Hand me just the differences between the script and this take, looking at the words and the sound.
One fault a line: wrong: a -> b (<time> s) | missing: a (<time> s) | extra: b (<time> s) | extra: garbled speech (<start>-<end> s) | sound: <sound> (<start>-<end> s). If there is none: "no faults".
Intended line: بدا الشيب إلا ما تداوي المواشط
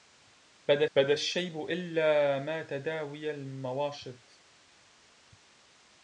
extra: بدا (0.9 s)